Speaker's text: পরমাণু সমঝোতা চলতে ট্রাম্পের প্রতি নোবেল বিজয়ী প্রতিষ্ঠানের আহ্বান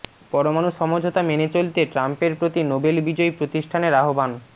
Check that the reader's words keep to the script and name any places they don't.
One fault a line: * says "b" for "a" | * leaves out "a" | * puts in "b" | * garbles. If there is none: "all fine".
* puts in "মেনে"